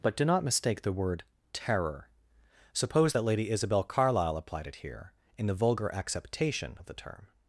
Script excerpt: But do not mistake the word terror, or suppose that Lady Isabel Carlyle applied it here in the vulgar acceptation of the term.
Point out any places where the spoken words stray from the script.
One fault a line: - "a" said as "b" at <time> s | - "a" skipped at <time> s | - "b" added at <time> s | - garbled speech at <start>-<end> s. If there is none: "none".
- "or" skipped at 2.1 s